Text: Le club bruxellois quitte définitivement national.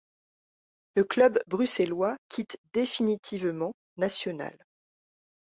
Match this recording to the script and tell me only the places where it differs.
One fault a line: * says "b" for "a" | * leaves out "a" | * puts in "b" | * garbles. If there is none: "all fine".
all fine